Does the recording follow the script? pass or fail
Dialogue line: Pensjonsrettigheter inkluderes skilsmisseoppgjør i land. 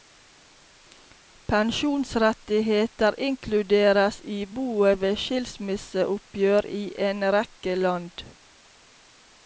fail